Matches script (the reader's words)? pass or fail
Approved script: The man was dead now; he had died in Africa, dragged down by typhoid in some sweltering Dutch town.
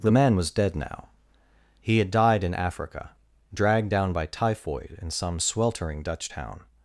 pass